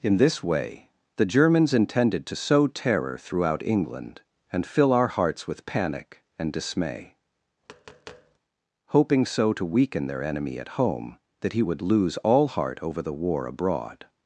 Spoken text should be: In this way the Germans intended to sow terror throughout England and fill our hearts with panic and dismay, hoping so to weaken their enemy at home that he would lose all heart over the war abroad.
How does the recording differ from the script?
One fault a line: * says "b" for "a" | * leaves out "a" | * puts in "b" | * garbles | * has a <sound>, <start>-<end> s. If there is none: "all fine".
* has a tap, 7.6-8.4 s